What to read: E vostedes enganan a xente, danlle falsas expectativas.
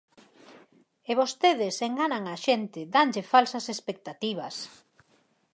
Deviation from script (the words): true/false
false